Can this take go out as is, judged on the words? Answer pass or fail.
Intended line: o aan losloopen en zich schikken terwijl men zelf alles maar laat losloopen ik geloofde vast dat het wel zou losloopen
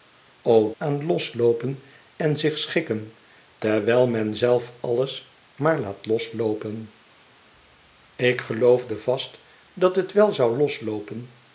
pass